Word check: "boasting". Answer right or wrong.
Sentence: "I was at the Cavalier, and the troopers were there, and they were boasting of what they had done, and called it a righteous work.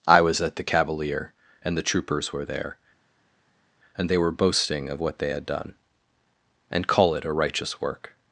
right